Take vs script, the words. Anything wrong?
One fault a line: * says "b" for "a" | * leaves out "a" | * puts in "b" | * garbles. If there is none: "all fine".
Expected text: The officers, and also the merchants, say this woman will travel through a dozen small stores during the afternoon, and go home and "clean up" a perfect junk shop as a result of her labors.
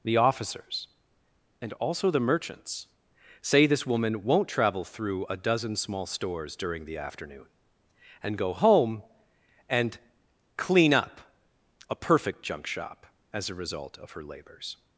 * says "won't" for "will"